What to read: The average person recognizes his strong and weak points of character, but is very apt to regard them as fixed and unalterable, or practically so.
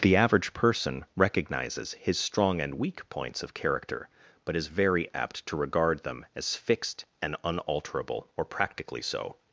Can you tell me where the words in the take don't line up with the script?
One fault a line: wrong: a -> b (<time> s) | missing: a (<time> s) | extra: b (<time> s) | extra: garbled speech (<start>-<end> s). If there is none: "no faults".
no faults